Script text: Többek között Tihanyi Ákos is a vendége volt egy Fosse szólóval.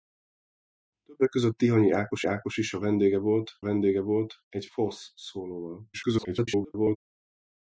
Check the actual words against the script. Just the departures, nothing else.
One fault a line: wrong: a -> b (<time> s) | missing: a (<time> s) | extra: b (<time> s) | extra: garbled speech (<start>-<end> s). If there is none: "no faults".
extra: Ákos (2.2 s)
extra: vendége volt (3.6 s)
extra: garbled speech (5.9-7.0 s)